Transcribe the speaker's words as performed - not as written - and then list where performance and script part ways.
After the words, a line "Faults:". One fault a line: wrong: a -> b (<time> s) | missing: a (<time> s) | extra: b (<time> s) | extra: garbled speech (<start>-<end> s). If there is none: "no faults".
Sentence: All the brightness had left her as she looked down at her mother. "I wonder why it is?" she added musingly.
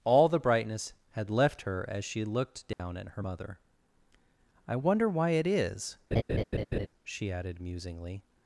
All the brightness had left her as she looked down at her mother. "I wonder why it is?" she added musingly.
Faults:
no faults